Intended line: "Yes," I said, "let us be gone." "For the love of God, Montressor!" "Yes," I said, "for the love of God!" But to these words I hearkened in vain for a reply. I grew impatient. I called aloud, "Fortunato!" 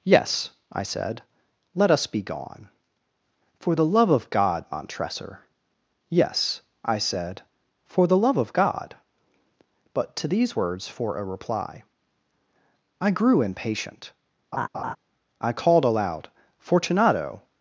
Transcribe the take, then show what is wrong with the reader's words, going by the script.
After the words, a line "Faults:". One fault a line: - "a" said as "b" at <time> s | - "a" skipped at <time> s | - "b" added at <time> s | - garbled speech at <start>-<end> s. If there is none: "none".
"Yes," I said, "let us be gone." "For the love of God, Montressor!" "Yes," I said, "for the love of God!" But to these words for a reply. I grew impatient. I called aloud, "Fortunato!"
Faults:
- "I hearkened in vain" skipped at 10.9 s